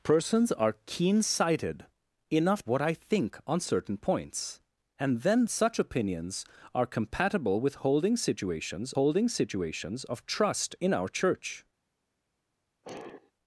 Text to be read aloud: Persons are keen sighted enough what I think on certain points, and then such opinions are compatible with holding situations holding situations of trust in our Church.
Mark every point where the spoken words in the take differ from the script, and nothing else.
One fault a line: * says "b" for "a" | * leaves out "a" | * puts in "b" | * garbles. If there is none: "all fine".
all fine